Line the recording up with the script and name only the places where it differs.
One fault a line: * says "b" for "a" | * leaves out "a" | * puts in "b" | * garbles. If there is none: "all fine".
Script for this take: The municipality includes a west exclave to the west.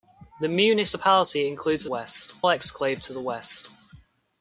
all fine